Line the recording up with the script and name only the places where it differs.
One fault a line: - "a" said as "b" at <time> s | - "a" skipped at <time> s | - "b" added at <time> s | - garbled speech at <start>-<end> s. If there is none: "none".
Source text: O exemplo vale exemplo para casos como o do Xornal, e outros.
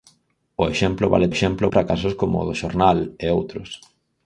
none